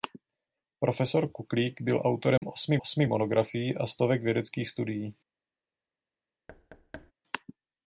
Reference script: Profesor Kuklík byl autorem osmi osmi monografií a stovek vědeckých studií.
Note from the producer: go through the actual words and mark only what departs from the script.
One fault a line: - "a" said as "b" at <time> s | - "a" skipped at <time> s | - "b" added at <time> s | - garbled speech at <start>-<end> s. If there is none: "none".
none